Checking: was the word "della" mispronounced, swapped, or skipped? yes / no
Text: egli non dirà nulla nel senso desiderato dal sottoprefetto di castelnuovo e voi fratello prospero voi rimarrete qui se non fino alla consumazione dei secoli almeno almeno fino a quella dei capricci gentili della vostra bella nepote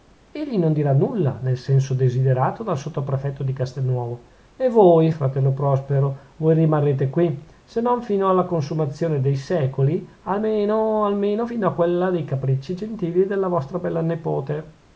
no